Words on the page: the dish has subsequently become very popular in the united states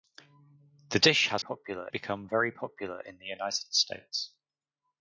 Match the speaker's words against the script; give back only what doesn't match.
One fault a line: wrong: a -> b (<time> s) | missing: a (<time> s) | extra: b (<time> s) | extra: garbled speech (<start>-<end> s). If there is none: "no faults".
wrong: subsequently -> popular (1.4 s)